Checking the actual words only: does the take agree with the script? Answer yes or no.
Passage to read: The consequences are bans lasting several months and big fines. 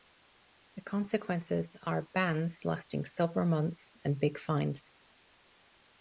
yes